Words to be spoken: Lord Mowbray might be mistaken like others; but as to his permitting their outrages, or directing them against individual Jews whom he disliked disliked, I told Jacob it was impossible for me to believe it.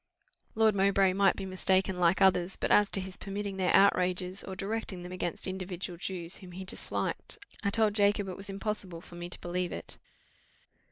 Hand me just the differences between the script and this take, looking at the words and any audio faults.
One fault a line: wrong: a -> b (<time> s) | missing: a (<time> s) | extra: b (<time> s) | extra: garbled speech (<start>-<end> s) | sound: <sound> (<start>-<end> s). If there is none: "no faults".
missing: disliked (7.4 s)